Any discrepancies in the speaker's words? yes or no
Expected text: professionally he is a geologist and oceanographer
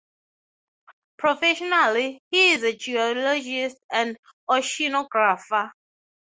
no